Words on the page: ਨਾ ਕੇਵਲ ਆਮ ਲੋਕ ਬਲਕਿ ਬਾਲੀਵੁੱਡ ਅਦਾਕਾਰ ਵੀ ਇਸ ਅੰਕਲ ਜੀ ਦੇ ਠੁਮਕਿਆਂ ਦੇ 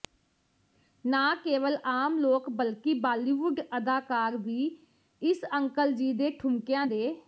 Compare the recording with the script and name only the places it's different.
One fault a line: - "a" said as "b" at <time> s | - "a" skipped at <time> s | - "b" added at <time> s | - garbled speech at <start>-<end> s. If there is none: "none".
none